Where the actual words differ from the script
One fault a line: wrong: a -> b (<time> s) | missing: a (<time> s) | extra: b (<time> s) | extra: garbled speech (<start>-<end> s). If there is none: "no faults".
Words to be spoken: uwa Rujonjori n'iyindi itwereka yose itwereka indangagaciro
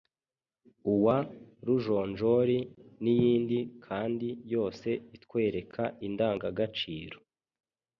wrong: itwereka -> kandi (3.9 s)